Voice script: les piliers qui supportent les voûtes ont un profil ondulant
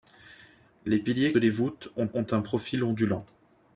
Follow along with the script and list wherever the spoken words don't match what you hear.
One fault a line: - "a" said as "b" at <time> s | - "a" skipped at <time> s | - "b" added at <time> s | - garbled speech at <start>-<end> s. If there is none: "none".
- "qui supportent" skipped at 1.3 s
- "ont" added at 2.1 s